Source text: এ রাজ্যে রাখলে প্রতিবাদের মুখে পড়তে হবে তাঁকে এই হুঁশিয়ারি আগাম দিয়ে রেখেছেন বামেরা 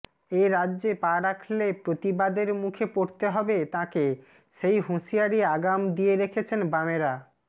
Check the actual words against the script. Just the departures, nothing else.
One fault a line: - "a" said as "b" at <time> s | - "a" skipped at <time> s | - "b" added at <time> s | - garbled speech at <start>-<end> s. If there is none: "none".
- "পা" added at 1.0 s
- "এই" said as "সেই" at 4.6 s